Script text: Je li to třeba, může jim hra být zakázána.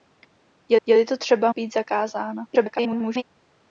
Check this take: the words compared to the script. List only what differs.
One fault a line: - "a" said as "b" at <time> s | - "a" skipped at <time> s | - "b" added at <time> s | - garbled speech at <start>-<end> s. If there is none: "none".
- "je" added at 0.9 s
- "může jim hra" skipped at 1.5 s
- garbled speech at 2.5-3.2 s